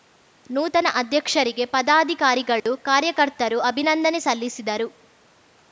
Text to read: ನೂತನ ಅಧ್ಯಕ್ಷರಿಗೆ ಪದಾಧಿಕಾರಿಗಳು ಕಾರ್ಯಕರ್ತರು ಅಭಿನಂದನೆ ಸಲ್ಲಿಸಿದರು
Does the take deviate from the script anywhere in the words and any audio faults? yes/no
yes